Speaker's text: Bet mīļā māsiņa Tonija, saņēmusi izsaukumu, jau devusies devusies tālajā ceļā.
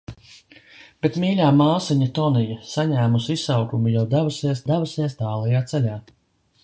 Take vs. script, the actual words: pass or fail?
pass